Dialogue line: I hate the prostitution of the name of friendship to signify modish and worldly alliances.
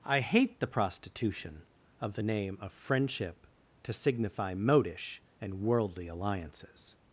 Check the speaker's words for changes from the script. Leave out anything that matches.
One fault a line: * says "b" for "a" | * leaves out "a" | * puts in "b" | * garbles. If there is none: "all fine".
all fine